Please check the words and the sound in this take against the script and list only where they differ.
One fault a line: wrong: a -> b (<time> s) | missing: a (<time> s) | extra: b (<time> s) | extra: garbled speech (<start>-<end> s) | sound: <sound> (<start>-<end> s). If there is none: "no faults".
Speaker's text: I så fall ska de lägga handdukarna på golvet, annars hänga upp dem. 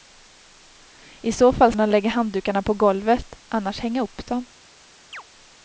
missing: ska (1.7 s)
sound: chirp (5.1-5.2 s)